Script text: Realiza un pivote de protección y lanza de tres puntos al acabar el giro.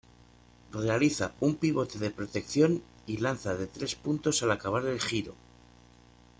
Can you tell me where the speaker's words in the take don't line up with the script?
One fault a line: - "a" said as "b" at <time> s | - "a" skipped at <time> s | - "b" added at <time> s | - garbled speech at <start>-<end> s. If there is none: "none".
none